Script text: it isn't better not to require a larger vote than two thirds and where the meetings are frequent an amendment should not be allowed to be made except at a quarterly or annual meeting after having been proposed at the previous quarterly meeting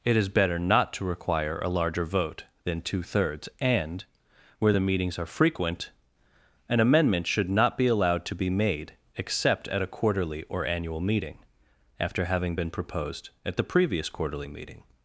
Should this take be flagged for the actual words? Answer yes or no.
yes